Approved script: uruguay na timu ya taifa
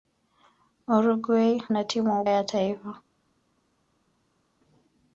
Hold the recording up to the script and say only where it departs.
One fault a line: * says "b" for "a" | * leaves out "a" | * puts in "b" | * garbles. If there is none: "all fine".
all fine